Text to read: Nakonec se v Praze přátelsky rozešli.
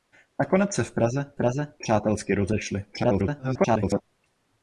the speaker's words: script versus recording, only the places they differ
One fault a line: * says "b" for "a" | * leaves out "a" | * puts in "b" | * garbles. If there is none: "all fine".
* puts in "Praze"
* garbles